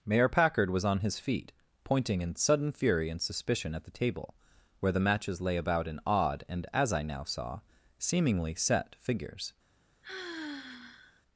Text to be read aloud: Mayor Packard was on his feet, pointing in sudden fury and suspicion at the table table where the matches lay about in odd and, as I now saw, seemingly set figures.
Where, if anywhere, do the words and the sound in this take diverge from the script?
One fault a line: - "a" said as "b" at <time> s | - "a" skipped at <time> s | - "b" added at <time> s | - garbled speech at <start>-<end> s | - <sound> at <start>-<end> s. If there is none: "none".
- "table" skipped at 4.3 s
- sigh at 10.0-11.2 s